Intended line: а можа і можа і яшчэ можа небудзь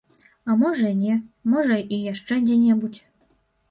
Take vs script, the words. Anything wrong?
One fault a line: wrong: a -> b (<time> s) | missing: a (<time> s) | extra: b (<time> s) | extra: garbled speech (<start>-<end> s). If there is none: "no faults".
extra: не (1.0 s)
wrong: можа -> дзе (2.5 s)